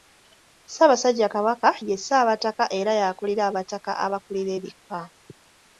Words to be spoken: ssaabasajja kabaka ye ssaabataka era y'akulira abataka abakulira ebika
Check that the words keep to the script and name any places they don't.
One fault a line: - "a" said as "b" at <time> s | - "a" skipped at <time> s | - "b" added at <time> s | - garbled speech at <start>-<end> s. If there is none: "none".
none